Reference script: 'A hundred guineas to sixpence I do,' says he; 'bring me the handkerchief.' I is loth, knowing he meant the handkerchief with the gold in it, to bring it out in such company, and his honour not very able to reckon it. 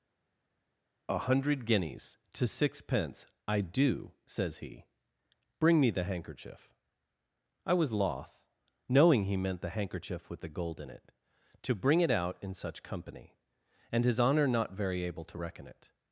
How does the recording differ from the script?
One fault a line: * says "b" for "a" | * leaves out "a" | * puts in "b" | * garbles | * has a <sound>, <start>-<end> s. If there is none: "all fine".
* says "was" for "is"